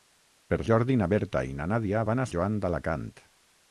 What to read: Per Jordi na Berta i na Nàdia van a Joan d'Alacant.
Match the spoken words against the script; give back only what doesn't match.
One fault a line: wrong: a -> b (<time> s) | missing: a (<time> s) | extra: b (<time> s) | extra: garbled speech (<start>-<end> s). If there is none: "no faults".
no faults